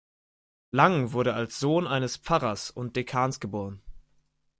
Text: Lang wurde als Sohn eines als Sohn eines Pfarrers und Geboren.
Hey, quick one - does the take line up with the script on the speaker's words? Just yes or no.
no